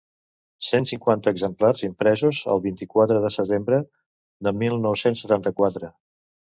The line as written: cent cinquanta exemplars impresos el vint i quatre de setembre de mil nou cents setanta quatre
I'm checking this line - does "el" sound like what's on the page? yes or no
yes